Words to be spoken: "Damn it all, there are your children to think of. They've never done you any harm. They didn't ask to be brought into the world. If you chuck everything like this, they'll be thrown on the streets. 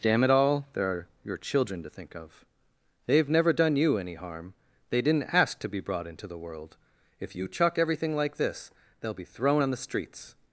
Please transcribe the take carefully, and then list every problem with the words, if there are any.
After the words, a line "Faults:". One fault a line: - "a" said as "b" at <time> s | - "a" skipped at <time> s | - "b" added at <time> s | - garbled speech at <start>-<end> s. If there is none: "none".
"Damn it all, there are your children to think of. They've never done you any harm. They didn't ask to be brought into the world. If you chuck everything like this, they'll be thrown on the streets.
Faults:
none